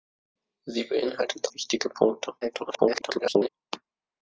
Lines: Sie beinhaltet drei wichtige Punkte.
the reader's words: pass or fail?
fail